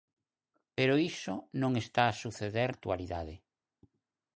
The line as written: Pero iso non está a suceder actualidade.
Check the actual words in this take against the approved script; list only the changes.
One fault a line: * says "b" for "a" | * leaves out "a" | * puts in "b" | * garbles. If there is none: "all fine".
all fine